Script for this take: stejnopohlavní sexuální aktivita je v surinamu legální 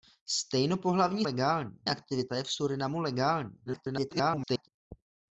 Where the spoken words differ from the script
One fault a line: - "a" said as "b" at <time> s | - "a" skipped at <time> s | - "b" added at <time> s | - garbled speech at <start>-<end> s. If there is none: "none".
- "sexuální" said as "legální" at 1.2 s
- garbled speech at 3.7-4.7 s